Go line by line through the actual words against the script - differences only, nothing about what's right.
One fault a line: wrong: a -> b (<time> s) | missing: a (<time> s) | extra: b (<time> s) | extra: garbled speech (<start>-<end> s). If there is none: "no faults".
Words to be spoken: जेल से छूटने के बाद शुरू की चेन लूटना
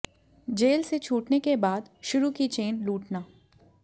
no faults